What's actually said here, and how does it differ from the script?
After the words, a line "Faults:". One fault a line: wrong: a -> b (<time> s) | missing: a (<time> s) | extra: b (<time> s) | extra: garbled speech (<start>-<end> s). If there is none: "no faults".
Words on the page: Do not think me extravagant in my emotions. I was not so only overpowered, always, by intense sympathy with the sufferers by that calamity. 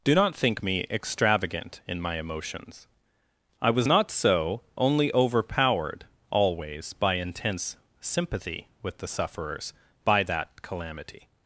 Do not think me extravagant in my emotions. I was not so only overpowered, always, by intense sympathy with the sufferers by that calamity.
Faults:
no faults